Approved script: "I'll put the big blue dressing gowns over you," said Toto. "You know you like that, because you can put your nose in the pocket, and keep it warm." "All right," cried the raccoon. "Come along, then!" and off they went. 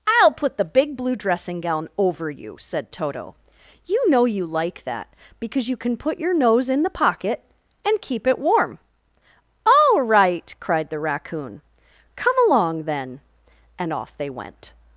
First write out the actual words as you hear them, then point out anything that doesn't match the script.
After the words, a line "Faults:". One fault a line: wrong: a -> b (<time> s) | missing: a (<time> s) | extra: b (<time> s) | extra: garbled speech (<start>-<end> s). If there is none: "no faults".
"I'll put the big blue dressing gown over you," said Toto. "You know you like that, because you can put your nose in the pocket, and keep it warm." "All right," cried the raccoon. "Come along, then!" and off they went.
Faults:
wrong: gowns -> gown (1.6 s)